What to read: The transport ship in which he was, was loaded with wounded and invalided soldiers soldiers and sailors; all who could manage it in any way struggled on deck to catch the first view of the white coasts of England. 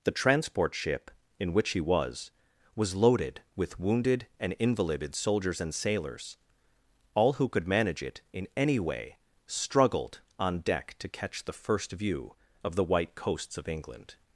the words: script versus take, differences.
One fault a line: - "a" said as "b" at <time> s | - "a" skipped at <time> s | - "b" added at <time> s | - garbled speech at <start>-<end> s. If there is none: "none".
- "soldiers" skipped at 5.6 s